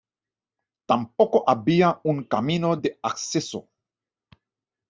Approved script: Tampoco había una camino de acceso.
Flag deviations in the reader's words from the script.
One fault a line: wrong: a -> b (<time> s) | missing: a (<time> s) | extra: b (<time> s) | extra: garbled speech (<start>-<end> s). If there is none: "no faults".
wrong: una -> un (2.0 s)